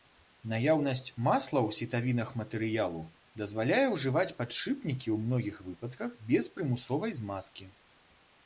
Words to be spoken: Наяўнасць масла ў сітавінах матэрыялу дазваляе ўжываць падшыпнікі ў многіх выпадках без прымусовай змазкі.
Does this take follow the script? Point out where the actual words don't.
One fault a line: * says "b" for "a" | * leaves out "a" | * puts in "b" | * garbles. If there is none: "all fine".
all fine